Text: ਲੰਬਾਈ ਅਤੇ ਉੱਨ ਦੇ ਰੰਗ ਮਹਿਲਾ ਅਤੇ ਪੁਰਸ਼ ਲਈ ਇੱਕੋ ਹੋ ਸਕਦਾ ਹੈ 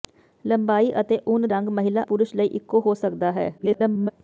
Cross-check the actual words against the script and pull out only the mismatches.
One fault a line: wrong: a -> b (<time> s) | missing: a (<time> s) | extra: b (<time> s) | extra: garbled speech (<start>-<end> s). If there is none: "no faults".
missing: ਦੇ (1.5 s)
missing: ਅਤੇ (2.0 s)
extra: garbled speech (3.6-4.1 s)